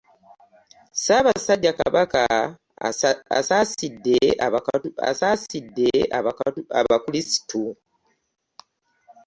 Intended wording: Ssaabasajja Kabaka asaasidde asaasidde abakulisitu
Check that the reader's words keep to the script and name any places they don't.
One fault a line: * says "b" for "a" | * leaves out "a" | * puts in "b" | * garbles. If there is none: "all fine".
all fine